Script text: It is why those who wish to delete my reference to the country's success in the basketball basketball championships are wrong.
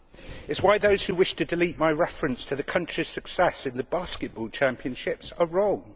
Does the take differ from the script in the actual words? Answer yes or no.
yes